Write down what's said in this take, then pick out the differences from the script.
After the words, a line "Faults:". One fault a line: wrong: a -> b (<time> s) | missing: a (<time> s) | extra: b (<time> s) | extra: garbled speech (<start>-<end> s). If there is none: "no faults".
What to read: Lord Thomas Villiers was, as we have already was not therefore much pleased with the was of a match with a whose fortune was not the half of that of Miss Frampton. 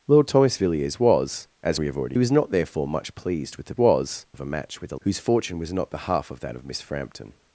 Lord Thomas Villiers was, as we have already was not therefore much pleased with the was of a match with a whose fortune was not the half of that of Miss Frampton.
Faults:
no faults